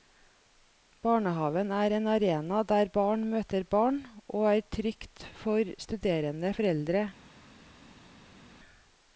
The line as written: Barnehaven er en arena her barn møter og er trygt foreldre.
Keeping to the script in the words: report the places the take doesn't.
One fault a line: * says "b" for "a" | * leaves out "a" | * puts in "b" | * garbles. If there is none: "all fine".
* says "der" for "her"
* puts in "barn"
* puts in "for studerende"